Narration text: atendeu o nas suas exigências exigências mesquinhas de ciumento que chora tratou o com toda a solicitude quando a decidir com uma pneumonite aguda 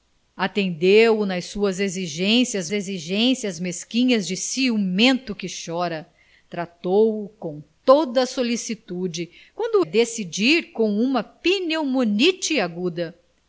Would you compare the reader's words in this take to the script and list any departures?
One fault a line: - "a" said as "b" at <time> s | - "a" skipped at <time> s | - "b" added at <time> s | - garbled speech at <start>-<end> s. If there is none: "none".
none